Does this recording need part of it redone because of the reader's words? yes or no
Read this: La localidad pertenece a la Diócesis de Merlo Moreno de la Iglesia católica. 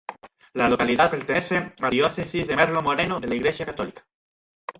yes